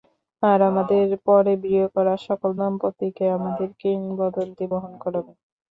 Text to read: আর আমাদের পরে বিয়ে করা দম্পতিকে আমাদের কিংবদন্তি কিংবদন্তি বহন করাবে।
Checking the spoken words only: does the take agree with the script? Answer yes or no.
no